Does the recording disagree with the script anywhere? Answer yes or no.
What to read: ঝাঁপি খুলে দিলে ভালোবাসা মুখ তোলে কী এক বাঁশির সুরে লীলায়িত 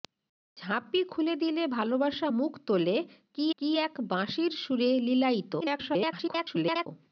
yes